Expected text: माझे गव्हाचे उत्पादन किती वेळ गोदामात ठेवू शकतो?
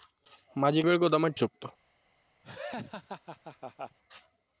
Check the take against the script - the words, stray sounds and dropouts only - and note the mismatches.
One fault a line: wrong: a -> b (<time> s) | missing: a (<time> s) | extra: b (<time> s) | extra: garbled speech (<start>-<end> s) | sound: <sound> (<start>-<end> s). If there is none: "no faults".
missing: गव्हाचे उत्पादन किती (0.8 s)
missing: ठेवू (1.3 s)
sound: laugh (2.4-4.0 s)